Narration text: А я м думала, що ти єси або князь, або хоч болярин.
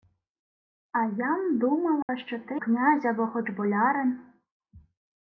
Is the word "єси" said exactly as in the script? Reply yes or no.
no